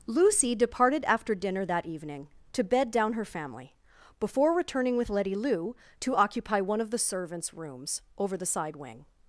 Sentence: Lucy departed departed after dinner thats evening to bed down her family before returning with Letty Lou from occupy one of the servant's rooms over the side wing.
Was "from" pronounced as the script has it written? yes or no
no